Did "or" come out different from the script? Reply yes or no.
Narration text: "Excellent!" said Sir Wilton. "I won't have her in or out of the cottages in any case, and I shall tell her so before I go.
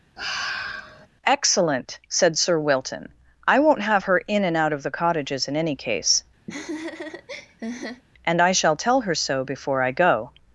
yes